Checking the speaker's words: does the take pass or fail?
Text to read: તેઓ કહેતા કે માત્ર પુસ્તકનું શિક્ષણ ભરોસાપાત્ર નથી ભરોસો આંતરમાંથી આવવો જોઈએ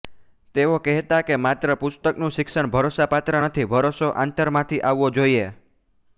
pass